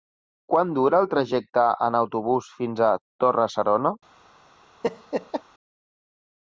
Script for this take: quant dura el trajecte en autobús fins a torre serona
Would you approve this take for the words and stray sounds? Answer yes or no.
no